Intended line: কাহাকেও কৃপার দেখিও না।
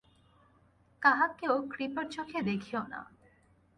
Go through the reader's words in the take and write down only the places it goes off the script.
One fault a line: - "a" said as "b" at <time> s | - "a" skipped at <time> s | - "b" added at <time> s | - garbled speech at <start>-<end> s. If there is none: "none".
- "চোখে" added at 2.1 s